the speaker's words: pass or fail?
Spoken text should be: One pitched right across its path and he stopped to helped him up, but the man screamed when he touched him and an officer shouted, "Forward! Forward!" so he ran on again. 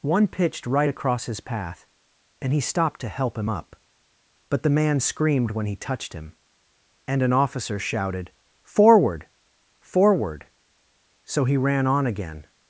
fail